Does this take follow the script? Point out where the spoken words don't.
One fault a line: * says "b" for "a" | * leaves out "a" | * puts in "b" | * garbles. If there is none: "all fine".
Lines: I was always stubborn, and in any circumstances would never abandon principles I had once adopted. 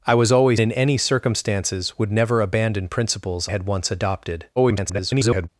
* leaves out "stubborn and"
* leaves out "I"
* garbles